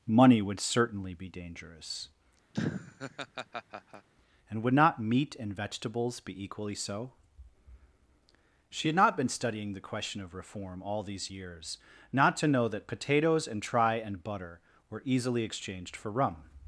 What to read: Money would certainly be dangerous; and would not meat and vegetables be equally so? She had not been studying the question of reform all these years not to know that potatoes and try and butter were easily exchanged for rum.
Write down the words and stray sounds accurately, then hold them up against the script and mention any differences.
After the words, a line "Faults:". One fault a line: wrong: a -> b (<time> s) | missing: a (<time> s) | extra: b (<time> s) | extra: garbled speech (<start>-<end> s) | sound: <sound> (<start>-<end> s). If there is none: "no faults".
Money would certainly be dangerous; and would not meat and vegetables be equally so? She had not been studying the question of reform all these years not to know that potatoes and try and butter were easily exchanged for rum.
Faults:
sound: laugh (2.5-4.1 s)